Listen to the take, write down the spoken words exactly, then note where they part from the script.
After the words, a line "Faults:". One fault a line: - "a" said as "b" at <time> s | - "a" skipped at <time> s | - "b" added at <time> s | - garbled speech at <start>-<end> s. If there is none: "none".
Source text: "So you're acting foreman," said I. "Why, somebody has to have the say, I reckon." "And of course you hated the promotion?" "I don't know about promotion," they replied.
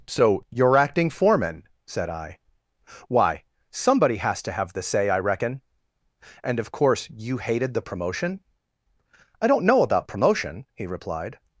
"So you're acting foreman," said I. "Why, somebody has to have the say, I reckon." "And of course you hated the promotion?" "I don't know about promotion," he replied.
Faults:
- "they" said as "he" at 10.7 s